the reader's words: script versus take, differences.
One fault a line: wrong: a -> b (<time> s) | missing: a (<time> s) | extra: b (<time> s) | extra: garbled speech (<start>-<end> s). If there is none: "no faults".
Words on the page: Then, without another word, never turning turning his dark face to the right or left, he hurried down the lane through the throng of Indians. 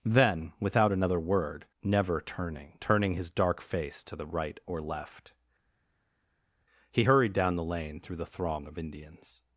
no faults